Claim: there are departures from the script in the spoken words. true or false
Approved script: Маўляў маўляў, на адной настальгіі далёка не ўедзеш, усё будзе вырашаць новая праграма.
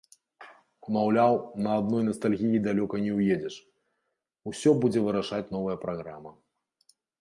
true